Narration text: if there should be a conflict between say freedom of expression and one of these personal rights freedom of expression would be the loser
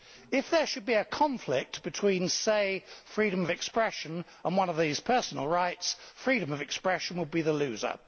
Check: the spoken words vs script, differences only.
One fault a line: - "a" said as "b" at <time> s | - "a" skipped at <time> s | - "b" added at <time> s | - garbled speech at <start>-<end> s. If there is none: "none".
none